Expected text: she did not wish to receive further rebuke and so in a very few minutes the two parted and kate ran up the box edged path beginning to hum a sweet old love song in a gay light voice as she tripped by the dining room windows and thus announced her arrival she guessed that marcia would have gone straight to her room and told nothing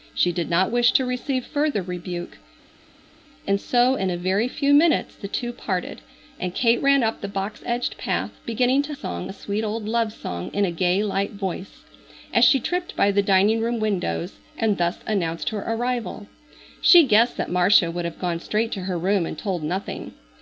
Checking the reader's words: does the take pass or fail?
fail